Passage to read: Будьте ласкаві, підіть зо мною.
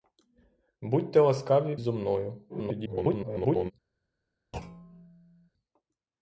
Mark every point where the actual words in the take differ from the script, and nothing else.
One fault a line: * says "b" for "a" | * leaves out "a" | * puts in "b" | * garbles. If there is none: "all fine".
* leaves out "підіть"
* garbles